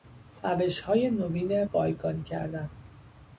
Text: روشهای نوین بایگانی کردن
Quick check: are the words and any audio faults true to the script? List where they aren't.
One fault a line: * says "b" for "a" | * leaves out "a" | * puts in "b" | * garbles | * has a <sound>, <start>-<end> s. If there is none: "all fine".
all fine